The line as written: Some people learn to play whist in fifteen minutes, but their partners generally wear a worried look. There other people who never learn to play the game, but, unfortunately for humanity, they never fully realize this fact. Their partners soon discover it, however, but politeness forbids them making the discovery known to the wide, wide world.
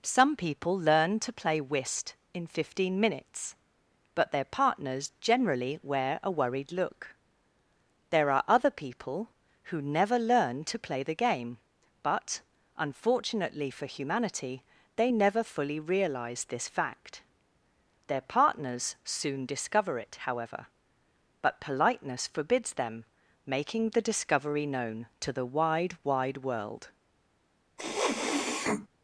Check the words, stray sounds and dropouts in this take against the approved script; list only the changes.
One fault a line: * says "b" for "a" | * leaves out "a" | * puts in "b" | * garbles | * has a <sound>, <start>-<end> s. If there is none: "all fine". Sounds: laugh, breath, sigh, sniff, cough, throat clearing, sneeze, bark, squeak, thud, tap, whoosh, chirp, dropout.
* puts in "are"
* has a sniff, 27.8-28.9 s